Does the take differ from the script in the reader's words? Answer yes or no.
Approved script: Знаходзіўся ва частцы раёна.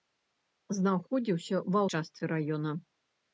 no